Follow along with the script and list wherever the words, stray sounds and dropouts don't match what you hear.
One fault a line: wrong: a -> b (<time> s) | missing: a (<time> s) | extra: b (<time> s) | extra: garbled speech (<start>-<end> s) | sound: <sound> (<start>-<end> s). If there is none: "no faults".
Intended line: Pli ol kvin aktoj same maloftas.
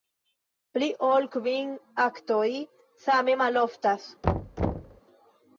sound: thud (4.2-5.0 s)